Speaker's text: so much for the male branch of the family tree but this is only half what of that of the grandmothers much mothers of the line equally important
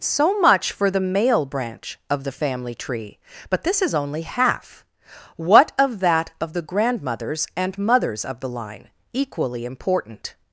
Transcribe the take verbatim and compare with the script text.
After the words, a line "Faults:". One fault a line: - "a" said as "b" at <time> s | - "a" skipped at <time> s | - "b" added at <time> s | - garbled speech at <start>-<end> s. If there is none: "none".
so much for the male branch of the family tree but this is only half what of that of the grandmothers and mothers of the line equally important
Faults:
- "much" said as "and" at 7.5 s